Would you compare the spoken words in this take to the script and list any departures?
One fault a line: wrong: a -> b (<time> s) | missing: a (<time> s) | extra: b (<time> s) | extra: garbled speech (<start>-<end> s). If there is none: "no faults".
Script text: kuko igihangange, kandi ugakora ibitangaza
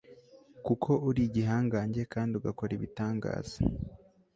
extra: uri (1.1 s)